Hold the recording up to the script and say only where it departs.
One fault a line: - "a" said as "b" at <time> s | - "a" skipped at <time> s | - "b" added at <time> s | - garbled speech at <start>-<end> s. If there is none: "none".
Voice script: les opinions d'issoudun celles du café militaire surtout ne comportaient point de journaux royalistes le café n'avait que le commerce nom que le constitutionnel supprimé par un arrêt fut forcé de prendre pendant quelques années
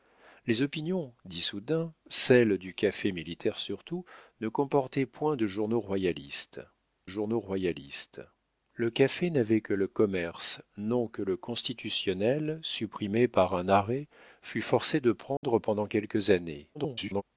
- "journaux royalistes" added at 7.0 s
- garbled speech at 16.7-17.2 s